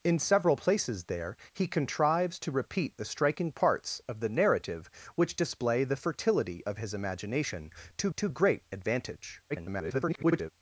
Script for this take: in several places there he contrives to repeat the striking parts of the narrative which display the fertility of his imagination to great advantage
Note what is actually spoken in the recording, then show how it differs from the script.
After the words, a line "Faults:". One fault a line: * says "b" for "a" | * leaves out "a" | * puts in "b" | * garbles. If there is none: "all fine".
in several places there he contrives to repeat the striking parts of the narrative which display the fertility of his imagination to to great advantage [garbled]
Faults:
* puts in "to"
* garbles